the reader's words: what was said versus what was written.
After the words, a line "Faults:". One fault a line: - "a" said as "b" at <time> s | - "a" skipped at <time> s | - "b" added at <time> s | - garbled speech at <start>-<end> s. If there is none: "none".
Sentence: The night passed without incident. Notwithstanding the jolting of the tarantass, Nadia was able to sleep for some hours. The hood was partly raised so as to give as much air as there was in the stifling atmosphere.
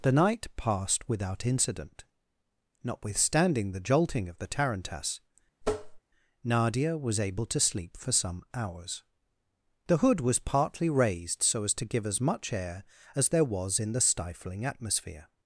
The night passed without incident. Notwithstanding the jolting of the tarantass, Nadia was able to sleep for some hours. The hood was partly raised so as to give as much air as there was in the stifling atmosphere.
Faults:
none